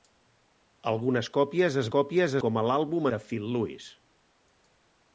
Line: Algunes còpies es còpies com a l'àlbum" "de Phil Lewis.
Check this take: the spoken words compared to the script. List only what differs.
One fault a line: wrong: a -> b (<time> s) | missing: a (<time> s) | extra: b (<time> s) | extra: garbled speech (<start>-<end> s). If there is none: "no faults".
no faults